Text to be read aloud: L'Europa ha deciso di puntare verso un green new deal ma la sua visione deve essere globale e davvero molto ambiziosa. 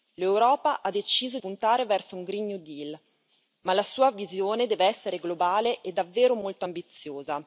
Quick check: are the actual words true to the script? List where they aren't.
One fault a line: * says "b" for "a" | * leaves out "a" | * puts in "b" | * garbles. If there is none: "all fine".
* leaves out "di"